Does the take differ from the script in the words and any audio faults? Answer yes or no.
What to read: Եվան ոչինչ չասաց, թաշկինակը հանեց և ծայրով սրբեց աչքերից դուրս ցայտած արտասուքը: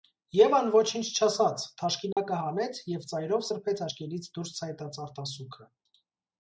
yes